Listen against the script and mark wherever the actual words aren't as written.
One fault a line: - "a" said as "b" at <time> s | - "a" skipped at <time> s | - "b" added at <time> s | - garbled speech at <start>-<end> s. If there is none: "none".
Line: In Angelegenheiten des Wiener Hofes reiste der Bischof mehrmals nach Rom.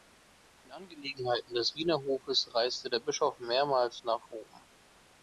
none